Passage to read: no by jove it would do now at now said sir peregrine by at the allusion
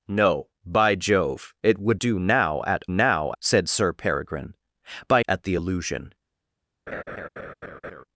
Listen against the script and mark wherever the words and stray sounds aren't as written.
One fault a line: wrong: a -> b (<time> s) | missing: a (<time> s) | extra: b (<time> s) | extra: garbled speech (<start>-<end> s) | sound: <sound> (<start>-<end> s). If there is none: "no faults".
sound: laugh (6.9-8.0 s)